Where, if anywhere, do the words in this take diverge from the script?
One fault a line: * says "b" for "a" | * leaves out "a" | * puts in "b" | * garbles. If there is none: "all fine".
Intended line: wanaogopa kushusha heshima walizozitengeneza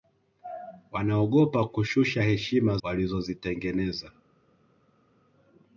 all fine